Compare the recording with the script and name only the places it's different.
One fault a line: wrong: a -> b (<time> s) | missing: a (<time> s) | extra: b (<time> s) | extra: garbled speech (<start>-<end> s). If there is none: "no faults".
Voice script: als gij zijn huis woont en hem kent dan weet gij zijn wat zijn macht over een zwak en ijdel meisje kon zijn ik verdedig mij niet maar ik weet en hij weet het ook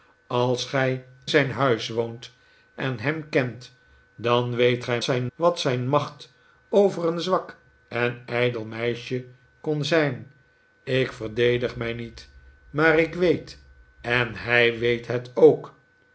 no faults